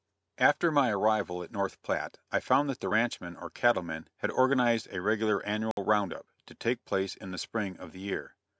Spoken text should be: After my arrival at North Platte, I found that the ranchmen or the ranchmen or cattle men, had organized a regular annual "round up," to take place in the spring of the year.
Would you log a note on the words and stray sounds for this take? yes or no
yes